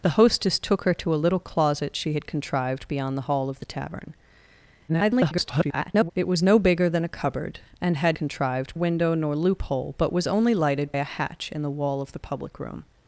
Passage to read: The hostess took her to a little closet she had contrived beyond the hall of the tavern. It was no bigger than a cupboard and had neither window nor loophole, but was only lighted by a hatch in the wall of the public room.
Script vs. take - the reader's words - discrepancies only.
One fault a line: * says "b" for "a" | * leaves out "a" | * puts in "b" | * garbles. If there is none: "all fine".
* garbles
* says "contrived" for "neither"
* leaves out "by"